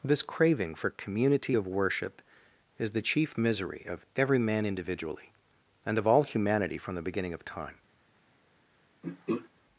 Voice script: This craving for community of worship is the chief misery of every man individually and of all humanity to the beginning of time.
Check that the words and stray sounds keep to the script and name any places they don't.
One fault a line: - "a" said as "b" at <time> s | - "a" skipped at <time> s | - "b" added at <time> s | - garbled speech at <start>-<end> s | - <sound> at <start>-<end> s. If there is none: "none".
- "to" said as "from" at 6.8 s
- throat clearing at 9.0-9.5 s